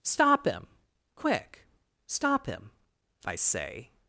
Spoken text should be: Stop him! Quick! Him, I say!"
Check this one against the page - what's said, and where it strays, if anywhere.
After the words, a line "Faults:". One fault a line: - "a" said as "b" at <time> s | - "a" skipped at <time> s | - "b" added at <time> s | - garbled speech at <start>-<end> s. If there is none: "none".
Stop him! Quick! Stop him, I say!"
Faults:
- "Stop" added at 2.1 s